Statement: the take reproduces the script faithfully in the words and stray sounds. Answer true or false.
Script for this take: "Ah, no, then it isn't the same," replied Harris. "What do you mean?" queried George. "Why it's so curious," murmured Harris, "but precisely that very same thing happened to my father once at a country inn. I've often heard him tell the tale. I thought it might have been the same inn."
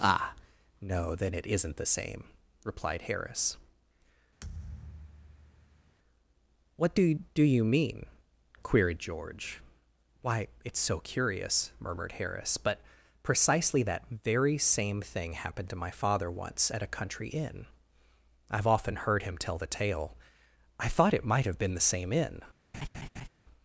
false